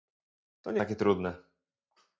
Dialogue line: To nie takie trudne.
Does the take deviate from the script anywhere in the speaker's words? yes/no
no